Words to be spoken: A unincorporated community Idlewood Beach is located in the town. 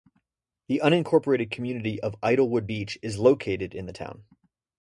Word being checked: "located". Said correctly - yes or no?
yes